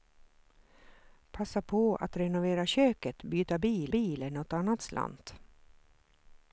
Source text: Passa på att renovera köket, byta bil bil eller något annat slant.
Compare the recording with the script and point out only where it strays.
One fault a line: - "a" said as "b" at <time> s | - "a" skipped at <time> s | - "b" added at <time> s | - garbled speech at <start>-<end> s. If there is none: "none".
none